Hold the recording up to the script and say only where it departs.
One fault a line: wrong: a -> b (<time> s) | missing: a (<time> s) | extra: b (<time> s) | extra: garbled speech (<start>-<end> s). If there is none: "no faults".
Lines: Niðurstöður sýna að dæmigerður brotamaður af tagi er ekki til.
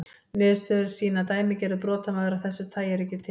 extra: þessu (2.5 s)